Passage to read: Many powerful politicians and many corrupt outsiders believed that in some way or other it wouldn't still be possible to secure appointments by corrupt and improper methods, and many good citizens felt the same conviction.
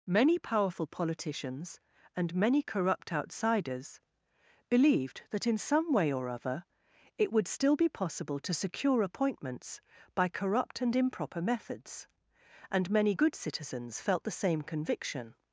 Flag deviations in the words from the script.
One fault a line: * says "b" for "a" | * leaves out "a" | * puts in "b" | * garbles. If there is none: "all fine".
* says "would" for "wouldn't"